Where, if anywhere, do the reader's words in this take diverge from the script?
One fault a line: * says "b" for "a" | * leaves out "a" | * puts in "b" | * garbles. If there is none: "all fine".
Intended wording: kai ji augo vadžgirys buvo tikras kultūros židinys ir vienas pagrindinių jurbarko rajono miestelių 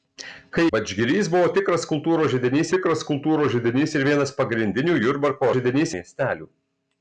* leaves out "ji augo"
* puts in "tikras kultūros židinys"
* says "židinys" for "rajono"